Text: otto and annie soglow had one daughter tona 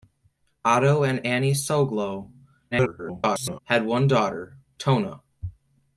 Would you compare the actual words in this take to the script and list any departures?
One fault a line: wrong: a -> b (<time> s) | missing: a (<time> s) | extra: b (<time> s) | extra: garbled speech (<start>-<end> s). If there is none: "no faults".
extra: garbled speech (2.7-3.6 s)